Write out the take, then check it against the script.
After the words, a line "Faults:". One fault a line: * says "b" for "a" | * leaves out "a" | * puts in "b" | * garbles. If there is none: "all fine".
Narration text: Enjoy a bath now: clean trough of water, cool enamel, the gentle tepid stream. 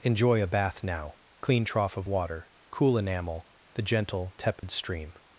Enjoy a bath now: clean trough of water, cool enamel, the gentle tepid stream.
Faults:
all fine